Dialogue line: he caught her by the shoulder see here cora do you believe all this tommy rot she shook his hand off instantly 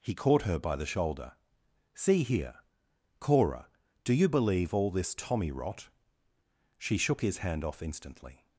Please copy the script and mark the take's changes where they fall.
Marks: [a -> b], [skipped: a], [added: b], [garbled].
he caught her by the shoulder see here cora do you believe all this tommy rot she shook his hand off instantly